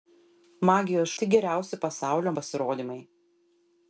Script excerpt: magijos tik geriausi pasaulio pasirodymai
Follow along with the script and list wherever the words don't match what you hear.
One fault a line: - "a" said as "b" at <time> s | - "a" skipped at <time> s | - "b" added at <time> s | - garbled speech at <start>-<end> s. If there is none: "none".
none